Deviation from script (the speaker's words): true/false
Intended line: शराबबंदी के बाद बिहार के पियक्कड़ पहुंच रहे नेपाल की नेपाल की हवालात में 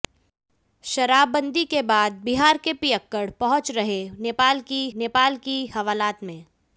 false